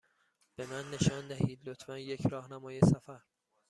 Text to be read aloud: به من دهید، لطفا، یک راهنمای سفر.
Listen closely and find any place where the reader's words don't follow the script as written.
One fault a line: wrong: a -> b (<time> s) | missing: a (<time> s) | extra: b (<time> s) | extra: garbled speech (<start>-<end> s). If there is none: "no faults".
extra: نشان (0.9 s)